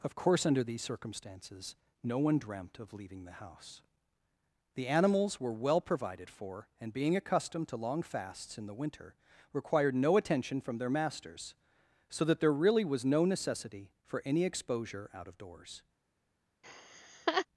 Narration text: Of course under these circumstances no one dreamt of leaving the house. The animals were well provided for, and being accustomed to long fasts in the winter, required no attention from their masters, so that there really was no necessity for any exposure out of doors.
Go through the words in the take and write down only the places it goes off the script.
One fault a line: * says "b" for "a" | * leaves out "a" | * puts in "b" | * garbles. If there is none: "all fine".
all fine